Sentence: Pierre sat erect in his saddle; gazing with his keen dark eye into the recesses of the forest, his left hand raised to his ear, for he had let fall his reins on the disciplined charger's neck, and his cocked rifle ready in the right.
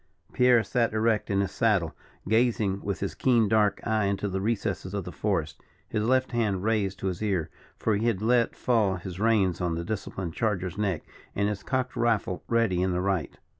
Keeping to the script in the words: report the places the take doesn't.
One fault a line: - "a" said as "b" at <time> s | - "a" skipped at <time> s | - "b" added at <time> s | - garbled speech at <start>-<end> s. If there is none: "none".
none